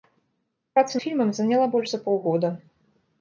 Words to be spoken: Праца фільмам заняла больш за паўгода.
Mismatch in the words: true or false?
false